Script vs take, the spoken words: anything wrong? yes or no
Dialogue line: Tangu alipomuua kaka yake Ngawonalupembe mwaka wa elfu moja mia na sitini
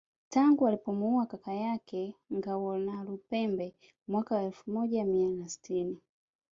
no